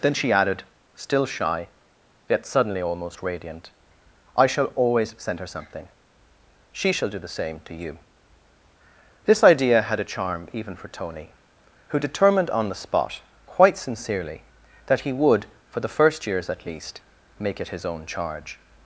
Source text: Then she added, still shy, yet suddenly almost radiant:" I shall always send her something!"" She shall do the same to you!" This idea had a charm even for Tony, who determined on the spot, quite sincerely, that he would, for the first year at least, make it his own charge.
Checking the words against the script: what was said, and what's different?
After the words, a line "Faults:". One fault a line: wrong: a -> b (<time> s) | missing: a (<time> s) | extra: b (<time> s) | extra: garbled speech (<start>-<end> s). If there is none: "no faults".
Then she added, still shy, yet suddenly almost radiant:" I shall always send her something!"" She shall do the same to you!" This idea had a charm even for Tony, who determined on the spot, quite sincerely, that he would, for the first years at least, make it his own charge.
Faults:
wrong: year -> years (16.2 s)